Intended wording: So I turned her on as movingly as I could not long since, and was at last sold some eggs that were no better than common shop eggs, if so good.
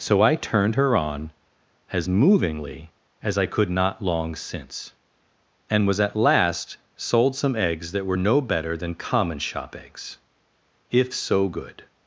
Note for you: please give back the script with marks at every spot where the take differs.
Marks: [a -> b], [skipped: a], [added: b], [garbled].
So I turned her on as movingly as I could not long since, and was at last sold some eggs that were no better than common shop eggs, if so good.